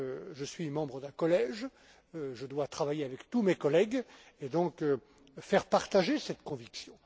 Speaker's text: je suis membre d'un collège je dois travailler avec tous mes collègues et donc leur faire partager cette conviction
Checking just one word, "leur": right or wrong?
wrong